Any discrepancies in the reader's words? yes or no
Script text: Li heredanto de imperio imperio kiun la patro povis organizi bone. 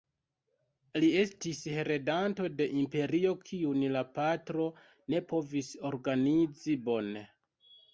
yes